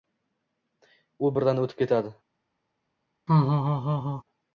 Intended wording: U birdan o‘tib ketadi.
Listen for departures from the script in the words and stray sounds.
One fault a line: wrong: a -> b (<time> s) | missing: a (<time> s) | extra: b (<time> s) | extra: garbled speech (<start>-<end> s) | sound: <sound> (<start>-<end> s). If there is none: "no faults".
sound: laugh (3.3-4.2 s)